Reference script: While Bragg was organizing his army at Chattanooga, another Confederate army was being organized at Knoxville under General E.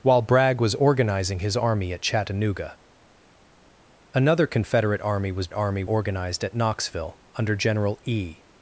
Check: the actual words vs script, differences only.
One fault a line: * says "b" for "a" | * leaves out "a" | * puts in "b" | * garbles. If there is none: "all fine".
* says "army" for "being"